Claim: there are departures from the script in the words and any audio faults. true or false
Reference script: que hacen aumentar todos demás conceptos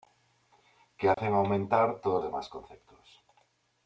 true